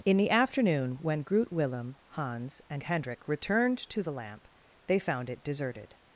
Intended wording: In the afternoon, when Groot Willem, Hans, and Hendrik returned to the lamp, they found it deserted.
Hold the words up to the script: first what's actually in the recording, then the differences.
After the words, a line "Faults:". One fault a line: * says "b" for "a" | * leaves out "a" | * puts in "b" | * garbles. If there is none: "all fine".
In the afternoon, when Groot Willem, Hans, and Hendrik returned to the lamp, they found it deserted.
Faults:
all fine